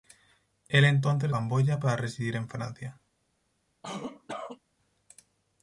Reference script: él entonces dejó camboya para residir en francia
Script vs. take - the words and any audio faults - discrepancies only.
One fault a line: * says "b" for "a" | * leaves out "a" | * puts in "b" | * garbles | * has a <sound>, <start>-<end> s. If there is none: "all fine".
* leaves out "dejó"
* has a cough, 3.8-4.6 s